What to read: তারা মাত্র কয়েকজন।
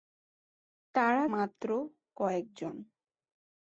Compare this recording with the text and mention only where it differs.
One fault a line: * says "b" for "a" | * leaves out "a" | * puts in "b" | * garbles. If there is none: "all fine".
all fine